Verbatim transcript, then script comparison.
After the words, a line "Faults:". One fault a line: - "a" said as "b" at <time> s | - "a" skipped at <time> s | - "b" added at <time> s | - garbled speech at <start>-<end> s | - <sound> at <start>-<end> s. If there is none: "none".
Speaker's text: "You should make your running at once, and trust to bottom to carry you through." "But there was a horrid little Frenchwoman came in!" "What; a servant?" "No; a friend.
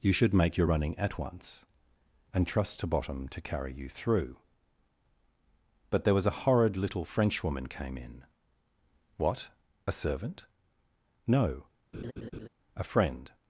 "You should make your running at once, and trust to bottom to carry you through." "But there was a horrid little Frenchwoman came in!" "What; a servant?" "No; a friend.
Faults:
- laugh at 11.9-12.5 s